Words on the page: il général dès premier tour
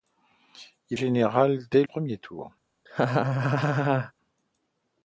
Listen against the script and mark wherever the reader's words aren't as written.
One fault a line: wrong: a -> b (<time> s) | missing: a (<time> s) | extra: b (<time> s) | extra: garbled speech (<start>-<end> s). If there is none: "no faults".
no faults